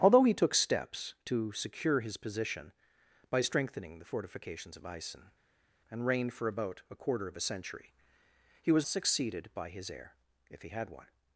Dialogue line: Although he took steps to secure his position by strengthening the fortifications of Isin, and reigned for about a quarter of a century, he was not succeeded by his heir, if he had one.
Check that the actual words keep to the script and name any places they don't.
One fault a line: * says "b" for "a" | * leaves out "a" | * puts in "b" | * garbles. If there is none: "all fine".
* leaves out "not"